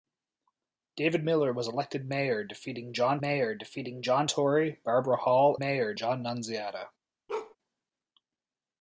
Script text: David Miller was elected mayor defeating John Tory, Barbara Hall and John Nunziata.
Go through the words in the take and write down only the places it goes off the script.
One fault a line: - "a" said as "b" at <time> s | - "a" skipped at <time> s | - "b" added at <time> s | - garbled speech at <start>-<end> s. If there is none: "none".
- "mayor defeating John" added at 3.2 s
- "and" said as "mayor" at 5.6 s